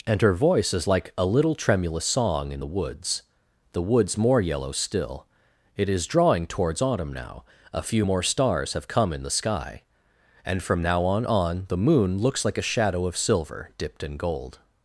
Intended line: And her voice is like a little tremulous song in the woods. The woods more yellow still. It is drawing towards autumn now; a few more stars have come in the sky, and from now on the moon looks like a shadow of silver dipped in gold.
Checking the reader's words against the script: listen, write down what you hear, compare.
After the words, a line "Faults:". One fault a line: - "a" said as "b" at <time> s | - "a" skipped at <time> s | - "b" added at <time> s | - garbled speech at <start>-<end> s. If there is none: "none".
And her voice is like a little tremulous song in the woods. The woods more yellow still. It is drawing towards autumn now; a few more stars have come in the sky, and from now on on the moon looks like a shadow of silver dipped in gold.
Faults:
- "on" added at 11.2 s